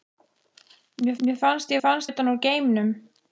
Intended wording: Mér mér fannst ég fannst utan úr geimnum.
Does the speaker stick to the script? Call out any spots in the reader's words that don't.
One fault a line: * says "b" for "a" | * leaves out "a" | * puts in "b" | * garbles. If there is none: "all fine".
all fine